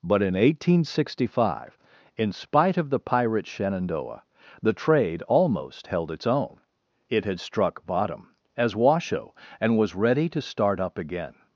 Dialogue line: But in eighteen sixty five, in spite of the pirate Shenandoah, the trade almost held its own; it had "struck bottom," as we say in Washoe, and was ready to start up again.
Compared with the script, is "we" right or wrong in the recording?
wrong